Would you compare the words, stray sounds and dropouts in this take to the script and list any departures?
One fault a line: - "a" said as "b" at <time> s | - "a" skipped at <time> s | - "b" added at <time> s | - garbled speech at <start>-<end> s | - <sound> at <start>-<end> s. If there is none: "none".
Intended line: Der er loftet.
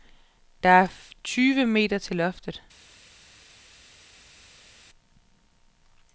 - "tyve meter til" added at 1.2 s